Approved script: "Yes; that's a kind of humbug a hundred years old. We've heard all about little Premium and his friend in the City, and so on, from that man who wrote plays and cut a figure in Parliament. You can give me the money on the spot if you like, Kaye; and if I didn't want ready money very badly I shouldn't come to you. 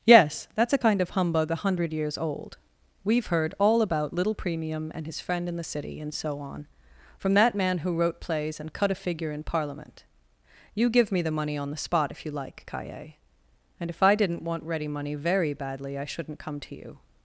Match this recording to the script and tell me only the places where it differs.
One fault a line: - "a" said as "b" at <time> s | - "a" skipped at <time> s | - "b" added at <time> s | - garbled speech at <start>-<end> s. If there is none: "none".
- "can" skipped at 10.9 s